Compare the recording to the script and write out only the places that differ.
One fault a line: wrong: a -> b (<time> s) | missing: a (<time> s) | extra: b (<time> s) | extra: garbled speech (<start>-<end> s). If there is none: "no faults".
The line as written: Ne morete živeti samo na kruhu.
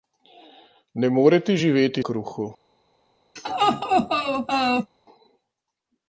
missing: samo na (2.0 s)